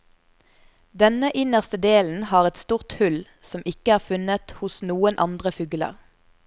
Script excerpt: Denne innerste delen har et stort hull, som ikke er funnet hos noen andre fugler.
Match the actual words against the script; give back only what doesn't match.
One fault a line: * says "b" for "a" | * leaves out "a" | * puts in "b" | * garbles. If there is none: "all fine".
all fine